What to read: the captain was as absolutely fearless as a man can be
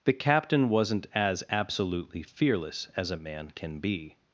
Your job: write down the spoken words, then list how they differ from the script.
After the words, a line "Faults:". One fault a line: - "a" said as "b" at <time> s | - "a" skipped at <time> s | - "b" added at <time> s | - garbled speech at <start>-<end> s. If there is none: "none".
the captain wasn't as absolutely fearless as a man can be
Faults:
- "was" said as "wasn't" at 0.7 s